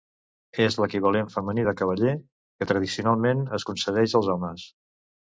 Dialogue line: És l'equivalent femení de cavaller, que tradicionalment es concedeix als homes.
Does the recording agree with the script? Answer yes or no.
yes